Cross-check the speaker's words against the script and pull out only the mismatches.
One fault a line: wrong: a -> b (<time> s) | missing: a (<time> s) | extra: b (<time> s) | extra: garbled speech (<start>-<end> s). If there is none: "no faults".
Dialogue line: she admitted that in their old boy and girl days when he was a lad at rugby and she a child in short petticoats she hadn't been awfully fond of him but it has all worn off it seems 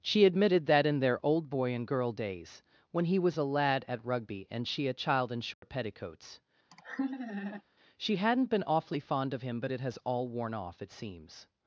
no faults